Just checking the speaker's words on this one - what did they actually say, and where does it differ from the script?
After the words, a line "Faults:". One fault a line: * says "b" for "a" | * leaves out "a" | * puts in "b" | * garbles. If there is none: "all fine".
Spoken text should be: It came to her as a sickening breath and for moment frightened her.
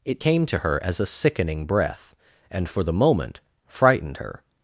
It came to her as a sickening breath and for the moment frightened her.
Faults:
* puts in "the"